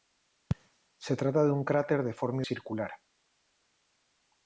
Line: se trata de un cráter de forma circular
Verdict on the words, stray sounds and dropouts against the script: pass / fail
pass